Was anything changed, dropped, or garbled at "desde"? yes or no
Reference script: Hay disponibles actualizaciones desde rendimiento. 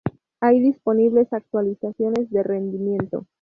yes